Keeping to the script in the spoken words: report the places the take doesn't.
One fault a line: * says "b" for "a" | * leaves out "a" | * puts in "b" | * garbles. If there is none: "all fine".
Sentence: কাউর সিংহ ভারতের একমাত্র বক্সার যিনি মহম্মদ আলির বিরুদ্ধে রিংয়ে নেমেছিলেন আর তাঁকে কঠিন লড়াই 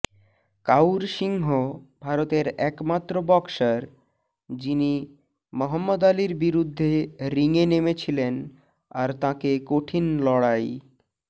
all fine